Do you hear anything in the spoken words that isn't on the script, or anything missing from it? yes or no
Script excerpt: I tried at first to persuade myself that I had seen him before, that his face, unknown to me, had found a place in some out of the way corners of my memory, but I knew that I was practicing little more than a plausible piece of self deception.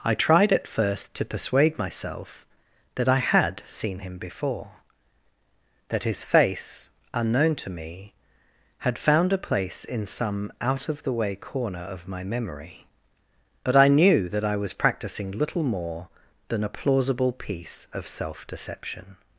yes